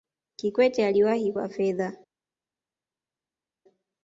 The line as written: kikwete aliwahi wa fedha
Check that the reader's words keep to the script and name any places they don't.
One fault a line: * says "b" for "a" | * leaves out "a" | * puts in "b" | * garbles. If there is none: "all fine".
all fine